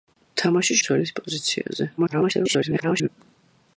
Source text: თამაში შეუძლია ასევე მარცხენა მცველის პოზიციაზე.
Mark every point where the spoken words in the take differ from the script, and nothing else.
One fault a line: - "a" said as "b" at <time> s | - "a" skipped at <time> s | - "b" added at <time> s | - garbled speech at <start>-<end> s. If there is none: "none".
- "შეუძლია ასევე მარცხენა" skipped at 0.8 s
- garbled speech at 2.0-3.1 s